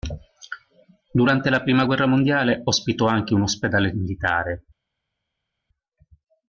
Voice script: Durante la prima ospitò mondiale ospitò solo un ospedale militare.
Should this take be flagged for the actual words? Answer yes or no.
yes